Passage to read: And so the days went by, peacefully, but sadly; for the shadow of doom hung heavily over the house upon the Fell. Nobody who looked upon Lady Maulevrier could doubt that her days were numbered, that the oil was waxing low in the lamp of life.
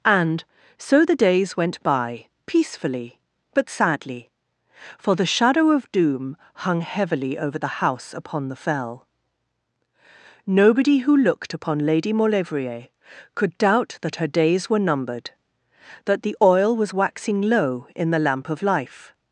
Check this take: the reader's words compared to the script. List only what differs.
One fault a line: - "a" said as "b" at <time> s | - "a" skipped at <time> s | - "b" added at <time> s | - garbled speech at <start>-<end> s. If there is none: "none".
none